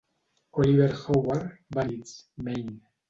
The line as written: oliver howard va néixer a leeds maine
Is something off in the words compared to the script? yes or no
yes